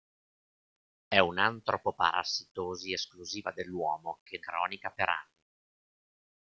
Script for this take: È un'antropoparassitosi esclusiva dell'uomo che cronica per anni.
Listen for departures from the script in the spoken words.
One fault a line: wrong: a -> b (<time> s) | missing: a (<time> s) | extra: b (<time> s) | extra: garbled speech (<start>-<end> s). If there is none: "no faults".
no faults